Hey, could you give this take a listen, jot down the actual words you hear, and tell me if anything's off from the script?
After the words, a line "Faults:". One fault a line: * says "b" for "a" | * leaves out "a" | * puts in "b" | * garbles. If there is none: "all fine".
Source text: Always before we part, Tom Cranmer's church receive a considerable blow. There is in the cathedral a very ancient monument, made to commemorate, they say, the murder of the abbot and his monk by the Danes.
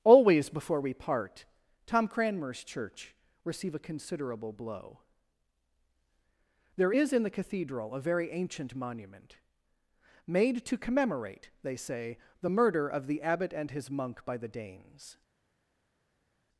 Always before we part, Tom Cranmer's church receive a considerable blow. There is in the cathedral a very ancient monument, made to commemorate, they say, the murder of the abbot and his monk by the Danes.
Faults:
all fine